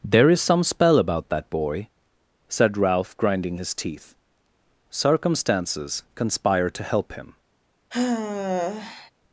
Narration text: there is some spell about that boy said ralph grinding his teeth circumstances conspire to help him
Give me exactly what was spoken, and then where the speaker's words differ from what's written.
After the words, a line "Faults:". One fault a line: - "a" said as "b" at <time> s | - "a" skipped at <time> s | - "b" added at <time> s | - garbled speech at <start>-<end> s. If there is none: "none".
there is some spell about that boy said ralph grinding his teeth circumstances conspire to help him
Faults:
none